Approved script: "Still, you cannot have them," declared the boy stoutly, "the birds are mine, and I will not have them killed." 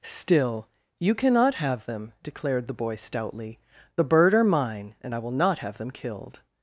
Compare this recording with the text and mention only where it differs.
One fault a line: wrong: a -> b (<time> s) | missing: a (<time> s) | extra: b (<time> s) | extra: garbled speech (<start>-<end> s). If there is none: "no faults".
wrong: birds -> bird (4.0 s)